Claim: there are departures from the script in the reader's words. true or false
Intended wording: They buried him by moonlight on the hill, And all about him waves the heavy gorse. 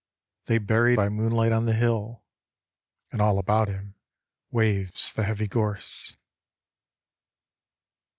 true